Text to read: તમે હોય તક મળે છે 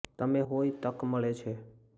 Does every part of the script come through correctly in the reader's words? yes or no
yes